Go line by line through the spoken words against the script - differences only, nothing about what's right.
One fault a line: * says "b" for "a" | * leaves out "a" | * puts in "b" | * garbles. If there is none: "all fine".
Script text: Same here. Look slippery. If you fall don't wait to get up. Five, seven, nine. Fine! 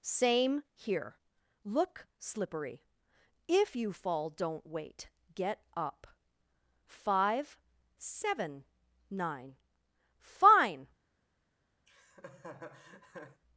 * leaves out "to"